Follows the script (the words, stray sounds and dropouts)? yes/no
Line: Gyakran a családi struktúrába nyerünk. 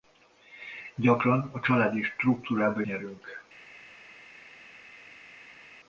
yes